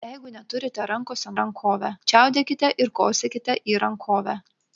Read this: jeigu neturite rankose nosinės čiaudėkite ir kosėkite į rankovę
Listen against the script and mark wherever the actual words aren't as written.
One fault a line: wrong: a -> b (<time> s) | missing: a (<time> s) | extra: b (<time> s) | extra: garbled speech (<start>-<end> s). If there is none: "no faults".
wrong: nosinės -> rankovę (1.4 s)